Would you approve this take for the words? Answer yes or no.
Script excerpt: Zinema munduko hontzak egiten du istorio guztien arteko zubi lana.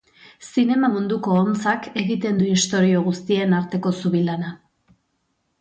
yes